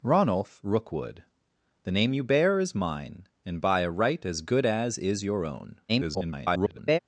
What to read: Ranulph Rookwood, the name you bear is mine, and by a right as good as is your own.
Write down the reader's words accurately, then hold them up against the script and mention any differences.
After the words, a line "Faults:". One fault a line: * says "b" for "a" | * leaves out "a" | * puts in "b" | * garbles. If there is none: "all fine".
Ranulph Rookwood, the name you bear is mine, and by a right as good as is your own. [garbled]
Faults:
* garbles